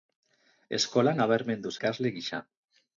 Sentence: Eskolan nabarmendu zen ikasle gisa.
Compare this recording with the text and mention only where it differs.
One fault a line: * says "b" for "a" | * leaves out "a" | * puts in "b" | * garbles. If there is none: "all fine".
* leaves out "zen"